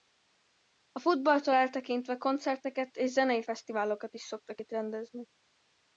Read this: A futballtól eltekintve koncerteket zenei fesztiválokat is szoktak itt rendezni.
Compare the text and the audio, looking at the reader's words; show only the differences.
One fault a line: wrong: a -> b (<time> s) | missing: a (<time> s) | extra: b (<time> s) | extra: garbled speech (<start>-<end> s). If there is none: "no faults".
extra: és (3.0 s)